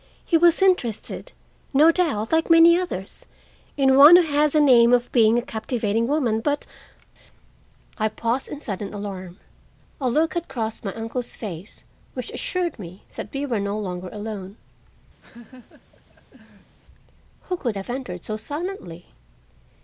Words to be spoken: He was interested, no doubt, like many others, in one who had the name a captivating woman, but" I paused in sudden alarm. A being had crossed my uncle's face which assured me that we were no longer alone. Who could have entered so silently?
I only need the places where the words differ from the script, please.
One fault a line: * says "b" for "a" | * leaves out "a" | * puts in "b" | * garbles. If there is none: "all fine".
* puts in "of being"
* says "look" for "being"